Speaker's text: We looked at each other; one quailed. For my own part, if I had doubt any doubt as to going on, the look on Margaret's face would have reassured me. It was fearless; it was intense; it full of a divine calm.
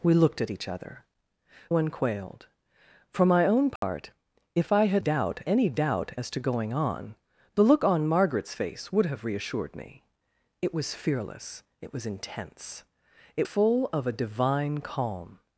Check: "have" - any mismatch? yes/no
no